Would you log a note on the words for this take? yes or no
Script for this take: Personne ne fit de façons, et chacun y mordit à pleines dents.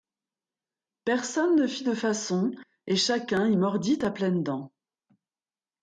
no